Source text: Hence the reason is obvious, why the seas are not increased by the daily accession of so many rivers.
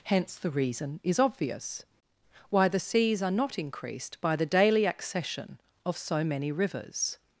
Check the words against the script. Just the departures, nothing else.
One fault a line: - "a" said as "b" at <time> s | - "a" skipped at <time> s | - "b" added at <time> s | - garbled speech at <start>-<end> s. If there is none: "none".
none